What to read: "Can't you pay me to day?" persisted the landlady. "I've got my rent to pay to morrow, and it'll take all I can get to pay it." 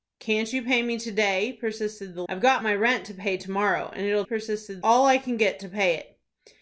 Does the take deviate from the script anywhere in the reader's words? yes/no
yes